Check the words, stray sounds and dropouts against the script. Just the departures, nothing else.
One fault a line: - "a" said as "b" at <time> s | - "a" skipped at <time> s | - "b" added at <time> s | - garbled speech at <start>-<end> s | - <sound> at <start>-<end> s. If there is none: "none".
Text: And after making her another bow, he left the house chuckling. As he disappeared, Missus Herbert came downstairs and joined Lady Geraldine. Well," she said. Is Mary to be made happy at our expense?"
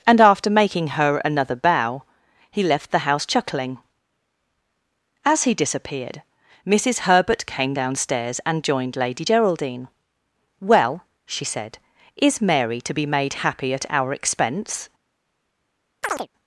- chirp at 16.0-16.3 s